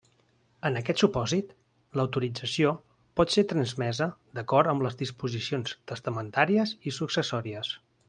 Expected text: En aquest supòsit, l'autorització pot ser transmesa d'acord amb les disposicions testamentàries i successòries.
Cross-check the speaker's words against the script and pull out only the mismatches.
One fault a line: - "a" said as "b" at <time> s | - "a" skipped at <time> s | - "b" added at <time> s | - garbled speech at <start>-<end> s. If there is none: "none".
none